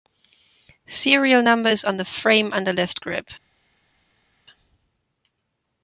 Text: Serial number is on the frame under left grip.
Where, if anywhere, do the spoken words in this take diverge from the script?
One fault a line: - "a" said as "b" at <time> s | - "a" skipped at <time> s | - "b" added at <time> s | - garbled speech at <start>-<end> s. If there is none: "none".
none